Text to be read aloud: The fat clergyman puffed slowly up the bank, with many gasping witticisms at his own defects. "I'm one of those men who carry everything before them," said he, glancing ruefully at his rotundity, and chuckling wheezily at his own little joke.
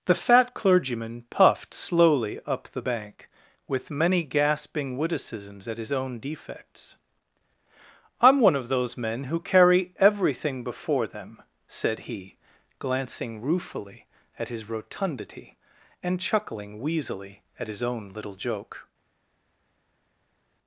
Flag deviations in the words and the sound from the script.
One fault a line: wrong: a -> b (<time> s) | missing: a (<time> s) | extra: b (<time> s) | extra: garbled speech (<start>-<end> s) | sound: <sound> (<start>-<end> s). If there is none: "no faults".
no faults